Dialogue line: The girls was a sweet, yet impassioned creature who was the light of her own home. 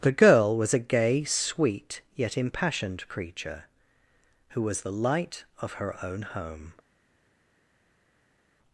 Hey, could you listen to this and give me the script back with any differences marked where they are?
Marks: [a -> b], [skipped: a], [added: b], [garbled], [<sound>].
The [girls -> girl] was a [added: gay] sweet, yet impassioned creature who was the light of her own home.